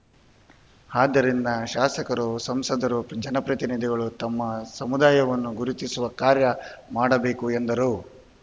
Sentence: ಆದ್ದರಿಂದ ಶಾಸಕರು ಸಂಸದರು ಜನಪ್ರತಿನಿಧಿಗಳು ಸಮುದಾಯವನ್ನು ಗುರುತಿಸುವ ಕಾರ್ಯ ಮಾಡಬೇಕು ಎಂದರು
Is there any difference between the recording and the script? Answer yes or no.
yes